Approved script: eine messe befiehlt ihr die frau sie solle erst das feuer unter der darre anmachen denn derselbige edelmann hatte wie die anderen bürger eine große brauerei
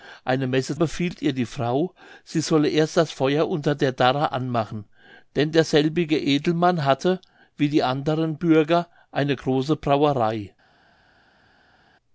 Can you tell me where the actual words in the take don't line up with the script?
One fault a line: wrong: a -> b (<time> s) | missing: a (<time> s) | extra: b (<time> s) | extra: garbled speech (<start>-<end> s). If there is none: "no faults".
no faults